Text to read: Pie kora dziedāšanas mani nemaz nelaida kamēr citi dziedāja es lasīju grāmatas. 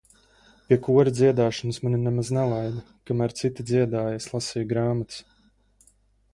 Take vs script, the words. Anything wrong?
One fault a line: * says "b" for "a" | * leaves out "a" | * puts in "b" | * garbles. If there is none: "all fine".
all fine